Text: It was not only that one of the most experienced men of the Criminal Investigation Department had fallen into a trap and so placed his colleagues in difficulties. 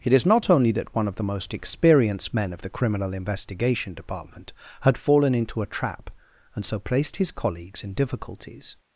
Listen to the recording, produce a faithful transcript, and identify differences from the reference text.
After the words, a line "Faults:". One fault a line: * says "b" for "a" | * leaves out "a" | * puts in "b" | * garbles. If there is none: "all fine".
It is not only that one of the most experienced men of the Criminal Investigation Department had fallen into a trap and so placed his colleagues in difficulties.
Faults:
* says "is" for "was"